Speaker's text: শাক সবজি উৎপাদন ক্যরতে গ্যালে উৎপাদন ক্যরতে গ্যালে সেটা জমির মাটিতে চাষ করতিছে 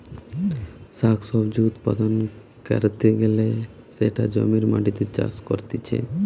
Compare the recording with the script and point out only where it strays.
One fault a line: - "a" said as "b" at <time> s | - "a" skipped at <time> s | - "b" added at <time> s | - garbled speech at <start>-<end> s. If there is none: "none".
- "উৎপাদন ক্যরতে গ্যালে" skipped at 3.5 s